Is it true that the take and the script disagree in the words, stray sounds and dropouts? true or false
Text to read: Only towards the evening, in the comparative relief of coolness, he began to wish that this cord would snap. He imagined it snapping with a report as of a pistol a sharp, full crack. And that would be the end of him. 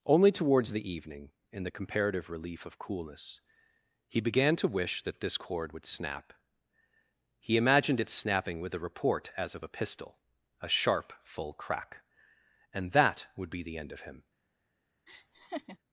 true